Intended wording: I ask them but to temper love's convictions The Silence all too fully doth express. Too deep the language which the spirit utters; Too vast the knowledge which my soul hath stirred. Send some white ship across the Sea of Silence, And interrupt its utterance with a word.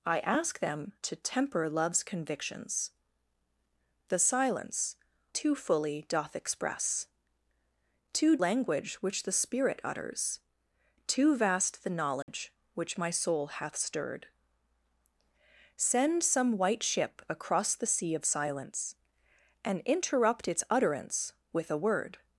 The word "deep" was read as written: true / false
false